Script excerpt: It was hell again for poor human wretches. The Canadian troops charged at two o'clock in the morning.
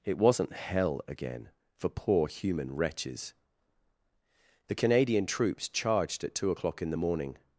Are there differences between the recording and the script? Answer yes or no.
yes